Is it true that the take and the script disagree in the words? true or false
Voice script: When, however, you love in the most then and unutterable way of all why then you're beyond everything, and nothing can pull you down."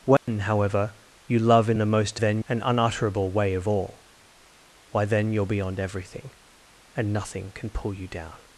false